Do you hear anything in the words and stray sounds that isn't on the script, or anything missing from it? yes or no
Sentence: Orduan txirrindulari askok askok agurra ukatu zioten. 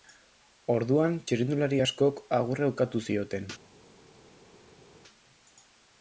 yes